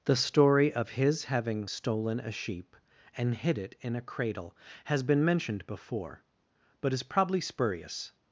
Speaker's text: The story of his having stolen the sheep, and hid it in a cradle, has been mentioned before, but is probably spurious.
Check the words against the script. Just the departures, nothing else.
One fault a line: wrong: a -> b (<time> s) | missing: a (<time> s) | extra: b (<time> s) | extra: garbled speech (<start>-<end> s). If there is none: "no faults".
wrong: the -> a (2.2 s)